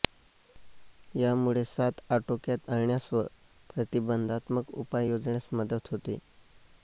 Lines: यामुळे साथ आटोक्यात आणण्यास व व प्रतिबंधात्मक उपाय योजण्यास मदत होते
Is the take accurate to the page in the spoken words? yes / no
no